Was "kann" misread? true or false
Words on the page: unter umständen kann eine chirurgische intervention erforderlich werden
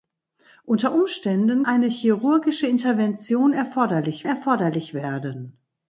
true